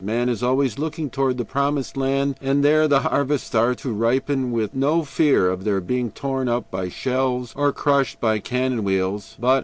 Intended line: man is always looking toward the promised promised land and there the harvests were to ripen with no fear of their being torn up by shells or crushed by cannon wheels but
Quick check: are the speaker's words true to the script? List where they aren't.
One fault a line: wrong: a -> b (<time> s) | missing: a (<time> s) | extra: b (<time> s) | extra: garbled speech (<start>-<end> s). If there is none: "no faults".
missing: promised (1.9 s)
wrong: were -> are (3.5 s)